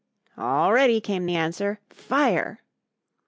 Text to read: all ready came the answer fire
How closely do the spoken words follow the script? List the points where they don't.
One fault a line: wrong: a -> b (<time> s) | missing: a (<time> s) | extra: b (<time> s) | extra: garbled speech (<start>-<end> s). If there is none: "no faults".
no faults